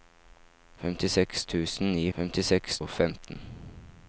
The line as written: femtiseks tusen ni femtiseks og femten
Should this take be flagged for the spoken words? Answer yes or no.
no